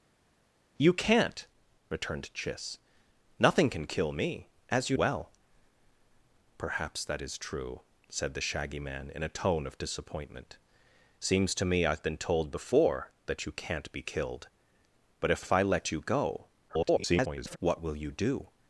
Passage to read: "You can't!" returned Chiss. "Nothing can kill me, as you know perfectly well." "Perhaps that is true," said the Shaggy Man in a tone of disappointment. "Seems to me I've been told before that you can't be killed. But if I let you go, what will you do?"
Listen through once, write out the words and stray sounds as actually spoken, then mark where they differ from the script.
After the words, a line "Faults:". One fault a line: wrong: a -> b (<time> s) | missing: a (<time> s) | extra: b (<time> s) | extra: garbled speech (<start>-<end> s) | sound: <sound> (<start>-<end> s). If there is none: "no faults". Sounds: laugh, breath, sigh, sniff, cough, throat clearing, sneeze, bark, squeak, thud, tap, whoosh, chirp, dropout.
"You can't!" returned Chiss. "Nothing can kill me, as you well." "Perhaps that is true," said the Shaggy Man in a tone of disappointment. "Seems to me I've been told before that you can't be killed. But if if I let you go, [garbled] what will you do?"
Faults:
missing: know perfectly (5.0 s)
extra: if (15.4 s)
extra: garbled speech (16.7-17.6 s)